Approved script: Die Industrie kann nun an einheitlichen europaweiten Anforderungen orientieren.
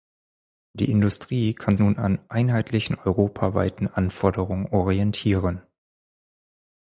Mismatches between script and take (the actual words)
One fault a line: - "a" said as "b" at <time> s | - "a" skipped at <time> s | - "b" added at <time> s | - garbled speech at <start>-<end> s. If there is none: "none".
none